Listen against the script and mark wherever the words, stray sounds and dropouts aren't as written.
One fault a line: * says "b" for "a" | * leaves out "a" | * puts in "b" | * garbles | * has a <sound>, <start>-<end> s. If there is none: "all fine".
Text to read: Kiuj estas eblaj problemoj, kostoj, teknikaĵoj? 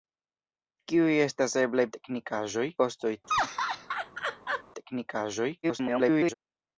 * says "teknikaĵoj" for "problemoj"
* has a laugh, 3.3-4.6 s
* garbles